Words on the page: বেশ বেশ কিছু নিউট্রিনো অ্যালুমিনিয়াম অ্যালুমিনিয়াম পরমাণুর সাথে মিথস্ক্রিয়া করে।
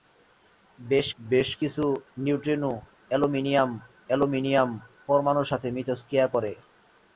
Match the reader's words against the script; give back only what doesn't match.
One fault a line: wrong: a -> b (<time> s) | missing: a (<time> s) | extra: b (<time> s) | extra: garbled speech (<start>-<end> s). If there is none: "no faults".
no faults